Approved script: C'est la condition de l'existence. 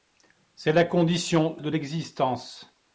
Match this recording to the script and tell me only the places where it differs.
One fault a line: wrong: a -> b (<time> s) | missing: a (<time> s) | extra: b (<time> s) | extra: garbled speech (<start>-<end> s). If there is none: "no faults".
no faults